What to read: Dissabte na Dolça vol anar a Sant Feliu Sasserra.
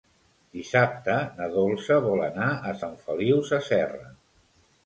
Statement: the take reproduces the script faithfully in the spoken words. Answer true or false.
true